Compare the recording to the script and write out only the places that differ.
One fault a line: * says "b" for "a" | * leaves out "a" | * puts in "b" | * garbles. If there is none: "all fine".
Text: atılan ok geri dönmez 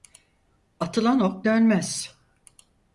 * leaves out "geri"